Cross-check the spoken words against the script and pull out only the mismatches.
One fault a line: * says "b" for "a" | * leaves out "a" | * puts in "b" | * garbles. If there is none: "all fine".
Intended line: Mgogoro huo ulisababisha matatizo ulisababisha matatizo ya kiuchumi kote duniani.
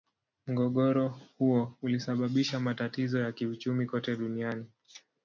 * leaves out "ulisababisha matatizo"